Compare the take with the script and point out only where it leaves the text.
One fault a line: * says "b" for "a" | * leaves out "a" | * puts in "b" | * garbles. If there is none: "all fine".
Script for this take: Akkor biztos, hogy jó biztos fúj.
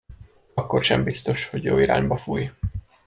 * puts in "sem"
* says "irányba" for "biztos"